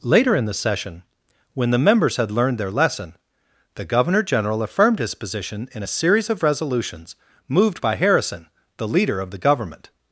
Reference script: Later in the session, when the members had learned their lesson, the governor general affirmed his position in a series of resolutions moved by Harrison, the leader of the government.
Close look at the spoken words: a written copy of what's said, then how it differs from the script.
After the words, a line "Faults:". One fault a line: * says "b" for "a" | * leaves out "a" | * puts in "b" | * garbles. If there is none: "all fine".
Later in the session, when the members had learned their lesson, the governor general affirmed his position in a series of resolutions moved by Harrison, the leader of the government.
Faults:
all fine